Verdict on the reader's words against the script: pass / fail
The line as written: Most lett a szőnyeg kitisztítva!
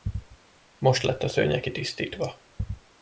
pass